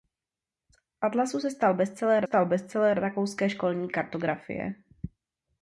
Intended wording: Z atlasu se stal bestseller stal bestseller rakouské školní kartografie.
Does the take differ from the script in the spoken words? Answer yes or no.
no